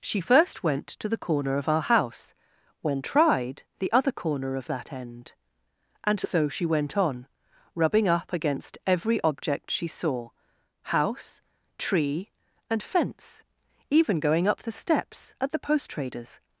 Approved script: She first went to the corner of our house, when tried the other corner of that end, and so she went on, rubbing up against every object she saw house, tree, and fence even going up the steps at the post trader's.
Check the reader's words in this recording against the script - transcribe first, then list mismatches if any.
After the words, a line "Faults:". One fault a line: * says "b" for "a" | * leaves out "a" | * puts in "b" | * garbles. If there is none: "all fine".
She first went to the corner of our house, when tried the other corner of that end, and so she went on, rubbing up against every object she saw house, tree, and fence even going up the steps at the post trader's.
Faults:
all fine